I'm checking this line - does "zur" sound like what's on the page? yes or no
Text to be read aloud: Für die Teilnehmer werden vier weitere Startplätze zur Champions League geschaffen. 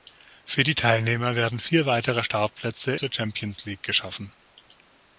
yes